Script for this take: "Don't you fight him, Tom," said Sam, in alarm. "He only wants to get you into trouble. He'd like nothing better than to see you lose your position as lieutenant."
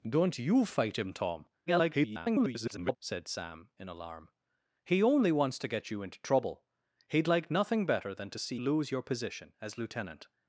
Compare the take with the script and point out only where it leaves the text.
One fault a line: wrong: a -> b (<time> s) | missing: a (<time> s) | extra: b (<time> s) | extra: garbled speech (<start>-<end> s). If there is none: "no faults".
extra: garbled speech (1.7-3.0 s)
missing: you (8.6 s)